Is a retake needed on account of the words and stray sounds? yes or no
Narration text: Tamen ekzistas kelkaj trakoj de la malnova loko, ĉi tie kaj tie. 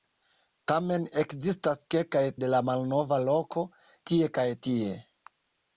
yes